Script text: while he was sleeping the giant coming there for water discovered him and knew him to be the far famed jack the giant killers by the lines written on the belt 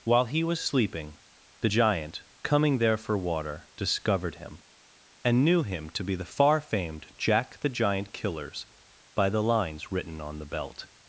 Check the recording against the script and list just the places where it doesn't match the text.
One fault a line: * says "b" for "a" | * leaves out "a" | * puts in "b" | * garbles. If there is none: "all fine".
all fine